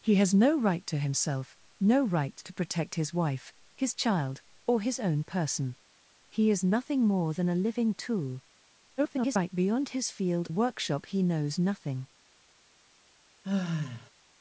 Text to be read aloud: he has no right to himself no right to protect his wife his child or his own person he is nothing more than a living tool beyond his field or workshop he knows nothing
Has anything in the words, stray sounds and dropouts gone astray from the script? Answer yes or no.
yes